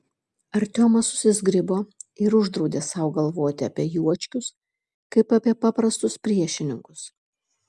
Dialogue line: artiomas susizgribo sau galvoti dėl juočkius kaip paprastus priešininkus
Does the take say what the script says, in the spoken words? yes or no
no